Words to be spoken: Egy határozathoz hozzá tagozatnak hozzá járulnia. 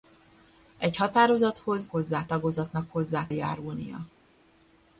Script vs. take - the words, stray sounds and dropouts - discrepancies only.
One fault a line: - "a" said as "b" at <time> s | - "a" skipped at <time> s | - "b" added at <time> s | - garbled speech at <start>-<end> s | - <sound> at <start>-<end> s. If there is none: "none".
none